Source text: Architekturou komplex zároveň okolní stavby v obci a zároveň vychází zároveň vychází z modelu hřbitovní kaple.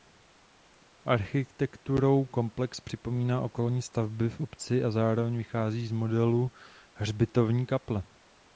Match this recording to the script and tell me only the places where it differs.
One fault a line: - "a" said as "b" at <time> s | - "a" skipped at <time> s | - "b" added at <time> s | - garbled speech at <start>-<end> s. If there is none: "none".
- "zároveň" said as "připomíná" at 2.8 s
- "zároveň vychází" skipped at 5.9 s